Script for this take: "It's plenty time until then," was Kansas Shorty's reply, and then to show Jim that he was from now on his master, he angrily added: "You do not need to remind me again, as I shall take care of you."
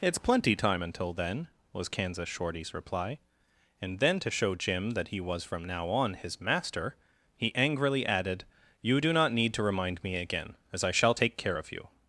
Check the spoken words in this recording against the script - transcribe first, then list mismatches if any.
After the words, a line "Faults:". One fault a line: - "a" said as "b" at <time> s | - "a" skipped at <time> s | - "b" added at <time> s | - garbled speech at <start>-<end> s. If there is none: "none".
"It's plenty time until then," was Kansas Shorty's reply, and then to show Jim that he was from now on his master, he angrily added: "You do not need to remind me again, as I shall take care of you."
Faults:
none